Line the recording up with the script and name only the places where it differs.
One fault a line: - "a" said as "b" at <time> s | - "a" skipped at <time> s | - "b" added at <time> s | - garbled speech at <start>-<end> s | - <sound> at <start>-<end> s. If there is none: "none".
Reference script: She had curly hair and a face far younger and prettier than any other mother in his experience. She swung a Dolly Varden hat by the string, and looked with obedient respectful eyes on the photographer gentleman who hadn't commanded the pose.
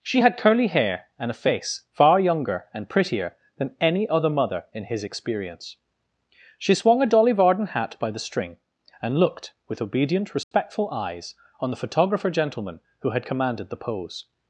- dropout at 10.4-10.5 s
- "hadn't" said as "had" at 13.1 s